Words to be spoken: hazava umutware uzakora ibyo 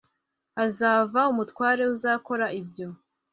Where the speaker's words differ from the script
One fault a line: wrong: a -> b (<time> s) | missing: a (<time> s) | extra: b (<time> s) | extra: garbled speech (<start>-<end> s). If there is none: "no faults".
no faults